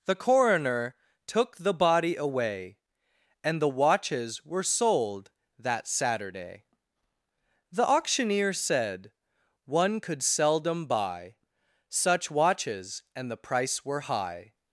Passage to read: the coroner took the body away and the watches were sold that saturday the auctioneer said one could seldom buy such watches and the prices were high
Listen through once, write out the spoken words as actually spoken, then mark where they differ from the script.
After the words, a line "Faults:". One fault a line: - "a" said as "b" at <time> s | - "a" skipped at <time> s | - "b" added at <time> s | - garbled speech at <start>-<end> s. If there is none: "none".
the coroner took the body away and the watches were sold that saturday the auctioneer said one could seldom buy such watches and the price were high
Faults:
- "prices" said as "price" at 13.4 s